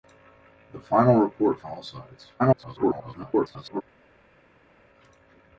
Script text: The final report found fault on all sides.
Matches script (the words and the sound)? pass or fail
fail